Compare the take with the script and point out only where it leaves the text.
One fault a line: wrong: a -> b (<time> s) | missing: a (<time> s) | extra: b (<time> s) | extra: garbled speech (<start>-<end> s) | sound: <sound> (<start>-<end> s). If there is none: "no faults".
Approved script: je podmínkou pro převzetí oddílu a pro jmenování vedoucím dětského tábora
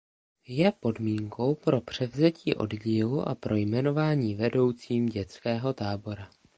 no faults